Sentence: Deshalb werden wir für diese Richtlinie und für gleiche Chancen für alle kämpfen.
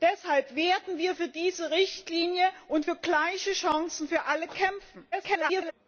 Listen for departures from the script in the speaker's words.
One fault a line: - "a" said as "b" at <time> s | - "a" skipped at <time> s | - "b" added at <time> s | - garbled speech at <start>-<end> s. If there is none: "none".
- garbled speech at 5.1-5.7 s